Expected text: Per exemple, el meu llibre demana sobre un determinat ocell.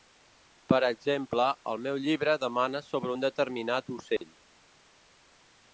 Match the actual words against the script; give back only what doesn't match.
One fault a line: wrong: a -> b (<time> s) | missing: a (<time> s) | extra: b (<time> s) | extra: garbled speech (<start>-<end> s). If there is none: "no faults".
no faults